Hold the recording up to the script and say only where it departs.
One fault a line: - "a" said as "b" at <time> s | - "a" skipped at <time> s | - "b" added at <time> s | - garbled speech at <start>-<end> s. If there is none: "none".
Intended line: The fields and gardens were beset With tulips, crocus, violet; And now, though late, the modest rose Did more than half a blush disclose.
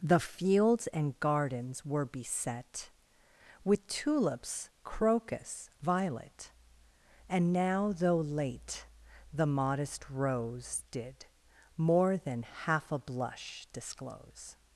none